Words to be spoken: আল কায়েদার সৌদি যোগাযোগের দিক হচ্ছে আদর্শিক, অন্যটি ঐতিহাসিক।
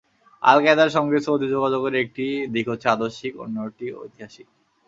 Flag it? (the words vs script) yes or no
yes